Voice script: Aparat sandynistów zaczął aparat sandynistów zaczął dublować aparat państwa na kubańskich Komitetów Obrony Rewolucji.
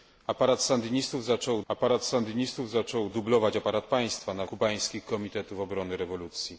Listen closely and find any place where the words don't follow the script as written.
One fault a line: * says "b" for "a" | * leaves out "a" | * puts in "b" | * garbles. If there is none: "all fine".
all fine